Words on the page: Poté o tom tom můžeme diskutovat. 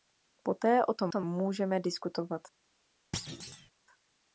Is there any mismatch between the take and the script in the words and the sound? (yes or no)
yes